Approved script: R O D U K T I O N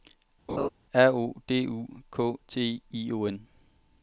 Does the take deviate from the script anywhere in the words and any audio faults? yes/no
yes